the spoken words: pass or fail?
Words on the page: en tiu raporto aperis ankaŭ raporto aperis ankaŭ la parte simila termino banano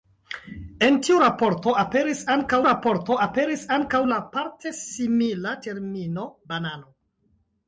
pass